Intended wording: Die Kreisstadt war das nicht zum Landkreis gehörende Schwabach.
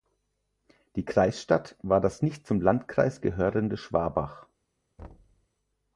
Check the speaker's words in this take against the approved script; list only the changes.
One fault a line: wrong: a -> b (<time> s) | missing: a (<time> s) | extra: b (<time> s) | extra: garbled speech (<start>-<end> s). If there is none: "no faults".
no faults